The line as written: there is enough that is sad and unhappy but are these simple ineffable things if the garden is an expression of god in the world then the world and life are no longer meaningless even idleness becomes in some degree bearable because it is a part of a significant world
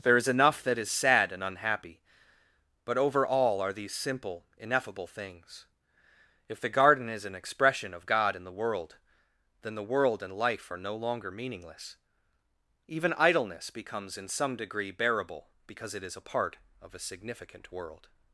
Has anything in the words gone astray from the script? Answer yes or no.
yes